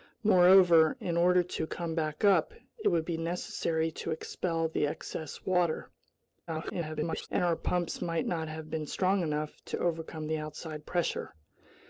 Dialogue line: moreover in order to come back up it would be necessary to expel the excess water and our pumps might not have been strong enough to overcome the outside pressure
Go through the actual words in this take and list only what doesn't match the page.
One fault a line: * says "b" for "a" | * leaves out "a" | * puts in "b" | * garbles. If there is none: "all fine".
* garbles